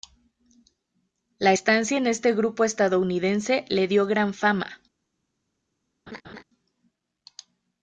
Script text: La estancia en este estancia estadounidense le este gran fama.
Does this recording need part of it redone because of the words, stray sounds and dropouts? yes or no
yes